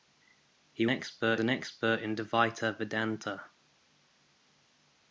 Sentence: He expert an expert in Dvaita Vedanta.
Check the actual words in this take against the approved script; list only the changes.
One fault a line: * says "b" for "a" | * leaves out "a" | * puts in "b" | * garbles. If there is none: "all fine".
all fine